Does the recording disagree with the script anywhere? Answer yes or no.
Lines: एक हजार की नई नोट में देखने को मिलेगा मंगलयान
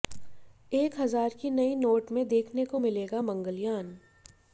no